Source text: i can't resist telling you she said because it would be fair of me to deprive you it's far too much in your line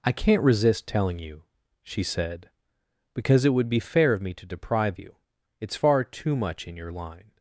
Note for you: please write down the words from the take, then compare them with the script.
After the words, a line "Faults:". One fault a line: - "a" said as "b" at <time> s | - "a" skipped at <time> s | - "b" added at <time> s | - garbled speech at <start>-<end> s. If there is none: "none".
i can't resist telling you she said because it would be fair of me to deprive you it's far too much in your line
Faults:
none